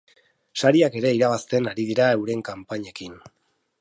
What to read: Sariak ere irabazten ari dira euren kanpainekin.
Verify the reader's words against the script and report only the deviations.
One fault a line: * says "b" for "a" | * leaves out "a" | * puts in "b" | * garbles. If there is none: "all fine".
all fine